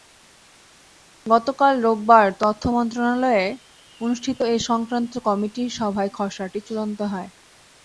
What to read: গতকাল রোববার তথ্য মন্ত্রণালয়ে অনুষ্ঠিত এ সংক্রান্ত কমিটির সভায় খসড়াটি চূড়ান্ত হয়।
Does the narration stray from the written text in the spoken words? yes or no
no